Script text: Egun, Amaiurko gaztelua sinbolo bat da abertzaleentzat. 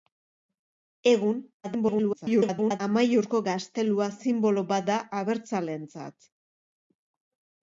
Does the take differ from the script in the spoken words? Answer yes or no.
yes